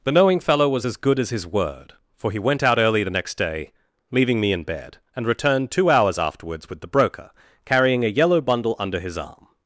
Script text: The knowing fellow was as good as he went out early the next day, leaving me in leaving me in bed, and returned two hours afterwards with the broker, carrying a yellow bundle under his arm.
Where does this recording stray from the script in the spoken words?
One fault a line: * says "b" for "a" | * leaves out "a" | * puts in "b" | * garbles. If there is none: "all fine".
* puts in "his word for"
* leaves out "leaving me in"